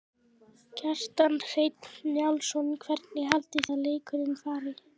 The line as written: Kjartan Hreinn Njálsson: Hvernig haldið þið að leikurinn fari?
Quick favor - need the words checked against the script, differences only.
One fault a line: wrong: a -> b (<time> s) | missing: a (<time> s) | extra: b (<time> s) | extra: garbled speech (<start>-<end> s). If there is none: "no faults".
missing: þið (3.7 s)